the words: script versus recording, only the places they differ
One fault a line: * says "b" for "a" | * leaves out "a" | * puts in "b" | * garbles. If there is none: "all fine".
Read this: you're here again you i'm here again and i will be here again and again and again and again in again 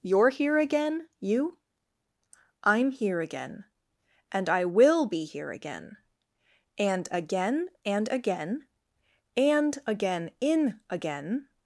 all fine